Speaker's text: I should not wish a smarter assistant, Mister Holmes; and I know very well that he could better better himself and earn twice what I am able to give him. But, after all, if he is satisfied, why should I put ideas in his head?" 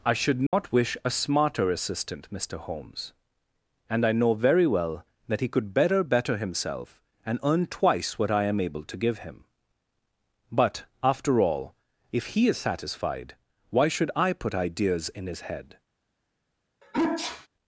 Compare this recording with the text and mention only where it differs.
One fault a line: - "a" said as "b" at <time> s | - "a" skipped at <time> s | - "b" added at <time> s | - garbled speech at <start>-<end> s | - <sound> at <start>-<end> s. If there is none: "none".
- dropout at 0.5-0.5 s
- sneeze at 16.8-17.5 s